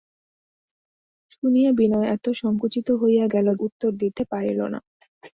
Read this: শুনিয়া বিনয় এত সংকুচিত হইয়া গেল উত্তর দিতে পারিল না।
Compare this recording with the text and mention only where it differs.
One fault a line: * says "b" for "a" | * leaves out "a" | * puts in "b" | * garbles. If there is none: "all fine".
all fine